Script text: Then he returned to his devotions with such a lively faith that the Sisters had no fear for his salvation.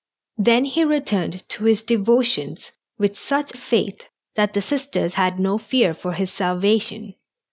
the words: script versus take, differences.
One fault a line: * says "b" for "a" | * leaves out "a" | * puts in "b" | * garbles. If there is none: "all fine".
* leaves out "a lively"